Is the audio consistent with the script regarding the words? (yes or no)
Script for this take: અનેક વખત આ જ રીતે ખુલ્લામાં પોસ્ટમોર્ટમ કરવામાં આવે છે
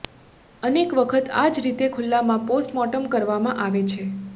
yes